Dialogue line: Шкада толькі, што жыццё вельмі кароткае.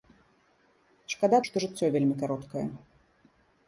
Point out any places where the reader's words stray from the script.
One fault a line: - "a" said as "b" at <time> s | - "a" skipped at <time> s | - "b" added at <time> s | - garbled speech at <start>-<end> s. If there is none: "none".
- "толькі" skipped at 1.4 s